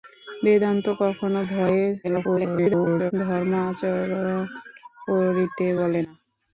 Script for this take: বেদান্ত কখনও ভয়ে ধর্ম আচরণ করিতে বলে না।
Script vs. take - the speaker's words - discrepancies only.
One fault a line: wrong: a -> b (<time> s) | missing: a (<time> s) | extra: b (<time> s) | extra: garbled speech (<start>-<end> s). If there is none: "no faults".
extra: garbled speech (2.0-3.1 s)